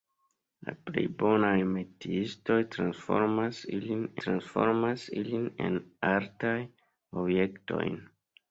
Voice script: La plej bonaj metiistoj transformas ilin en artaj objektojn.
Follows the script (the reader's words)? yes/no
no